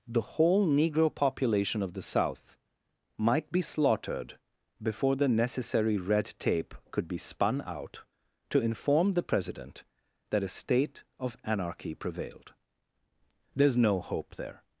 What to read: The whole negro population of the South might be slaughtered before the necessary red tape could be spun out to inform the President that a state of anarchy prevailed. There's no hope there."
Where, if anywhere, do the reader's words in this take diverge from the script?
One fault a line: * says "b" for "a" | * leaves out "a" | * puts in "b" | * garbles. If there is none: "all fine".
all fine